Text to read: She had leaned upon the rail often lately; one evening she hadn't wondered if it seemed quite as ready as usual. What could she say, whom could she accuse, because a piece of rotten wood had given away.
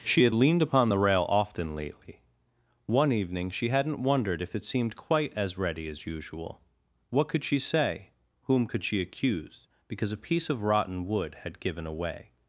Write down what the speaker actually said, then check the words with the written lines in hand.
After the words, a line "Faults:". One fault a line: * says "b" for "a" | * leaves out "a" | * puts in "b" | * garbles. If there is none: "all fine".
She had leaned upon the rail often lately; one evening she hadn't wondered if it seemed quite as ready as usual. What could she say, whom could she accuse, because a piece of rotten wood had given away.
Faults:
all fine